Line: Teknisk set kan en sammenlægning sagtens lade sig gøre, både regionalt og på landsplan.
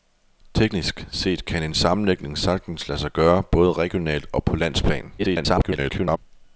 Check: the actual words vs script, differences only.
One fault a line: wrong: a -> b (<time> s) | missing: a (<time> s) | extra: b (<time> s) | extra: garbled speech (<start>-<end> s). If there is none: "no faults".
extra: garbled speech (5.2-6.2 s)